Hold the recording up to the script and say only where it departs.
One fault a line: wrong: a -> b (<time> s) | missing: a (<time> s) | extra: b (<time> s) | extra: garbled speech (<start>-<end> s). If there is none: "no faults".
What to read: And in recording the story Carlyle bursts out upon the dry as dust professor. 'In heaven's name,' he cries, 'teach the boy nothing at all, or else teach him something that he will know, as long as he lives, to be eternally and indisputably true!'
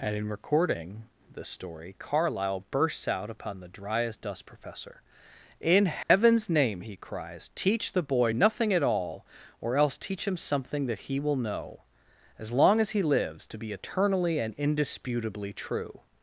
no faults